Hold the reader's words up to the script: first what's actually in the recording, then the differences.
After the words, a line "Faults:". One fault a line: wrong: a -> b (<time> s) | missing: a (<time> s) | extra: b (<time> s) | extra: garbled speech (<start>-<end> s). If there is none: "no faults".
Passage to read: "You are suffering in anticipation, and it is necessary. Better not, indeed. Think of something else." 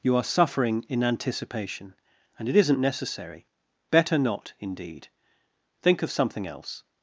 "You are suffering in anticipation, and it isn't necessary. Better not, indeed. Think of something else."
Faults:
wrong: is -> isn't (2.5 s)